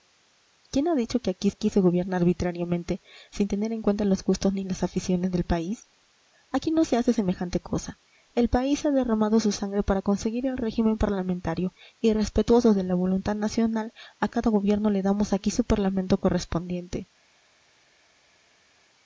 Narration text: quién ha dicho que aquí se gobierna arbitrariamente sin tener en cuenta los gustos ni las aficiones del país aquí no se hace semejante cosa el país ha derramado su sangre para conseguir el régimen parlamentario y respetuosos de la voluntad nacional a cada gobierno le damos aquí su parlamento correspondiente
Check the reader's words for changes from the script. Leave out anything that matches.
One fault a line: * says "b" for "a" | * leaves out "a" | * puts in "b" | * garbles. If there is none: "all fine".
* puts in "aquí"